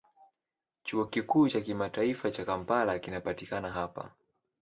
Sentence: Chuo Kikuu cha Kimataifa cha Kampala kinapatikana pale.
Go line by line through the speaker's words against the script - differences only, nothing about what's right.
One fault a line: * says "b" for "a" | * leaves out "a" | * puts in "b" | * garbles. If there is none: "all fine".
* says "hapa" for "pale"